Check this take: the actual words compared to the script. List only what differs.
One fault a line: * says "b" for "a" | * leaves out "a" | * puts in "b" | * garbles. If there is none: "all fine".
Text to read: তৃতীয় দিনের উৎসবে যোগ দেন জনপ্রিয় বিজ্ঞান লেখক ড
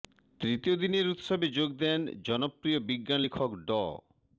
all fine